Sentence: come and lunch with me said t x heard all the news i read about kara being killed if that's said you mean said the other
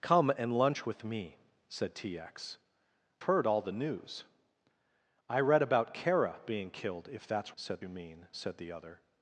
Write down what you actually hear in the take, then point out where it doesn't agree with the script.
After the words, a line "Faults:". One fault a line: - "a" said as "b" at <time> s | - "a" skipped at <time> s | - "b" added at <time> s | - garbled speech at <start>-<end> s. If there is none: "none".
come and lunch with me said t x heard all the news i read about kara being killed if that's said you mean said the other
Faults:
none